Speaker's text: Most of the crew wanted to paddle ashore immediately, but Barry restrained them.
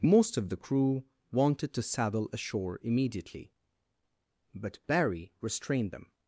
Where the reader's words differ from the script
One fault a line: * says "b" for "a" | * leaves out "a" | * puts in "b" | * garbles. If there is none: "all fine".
* says "saddle" for "paddle"